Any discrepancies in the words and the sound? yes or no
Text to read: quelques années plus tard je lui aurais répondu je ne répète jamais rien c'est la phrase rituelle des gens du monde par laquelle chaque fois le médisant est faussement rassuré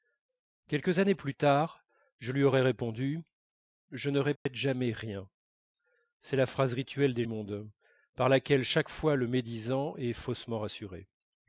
yes